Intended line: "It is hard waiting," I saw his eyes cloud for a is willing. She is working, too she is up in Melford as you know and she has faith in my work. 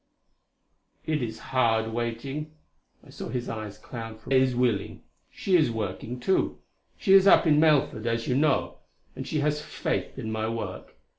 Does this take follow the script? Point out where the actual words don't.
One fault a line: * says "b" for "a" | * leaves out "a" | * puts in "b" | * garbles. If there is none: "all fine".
all fine